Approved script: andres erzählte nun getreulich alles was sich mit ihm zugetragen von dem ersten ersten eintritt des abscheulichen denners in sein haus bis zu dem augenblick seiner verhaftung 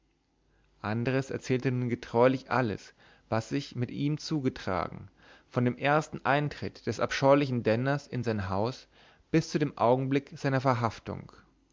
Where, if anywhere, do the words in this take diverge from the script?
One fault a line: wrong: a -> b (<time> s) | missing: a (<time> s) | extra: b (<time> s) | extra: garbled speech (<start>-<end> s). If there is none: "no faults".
missing: ersten (6.2 s)